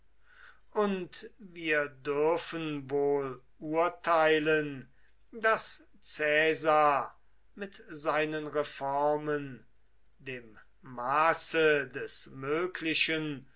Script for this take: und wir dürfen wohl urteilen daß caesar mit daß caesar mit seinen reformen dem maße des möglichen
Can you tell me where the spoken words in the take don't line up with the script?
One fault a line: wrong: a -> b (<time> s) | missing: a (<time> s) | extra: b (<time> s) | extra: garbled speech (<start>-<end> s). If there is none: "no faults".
missing: daß caesar mit (7.8 s)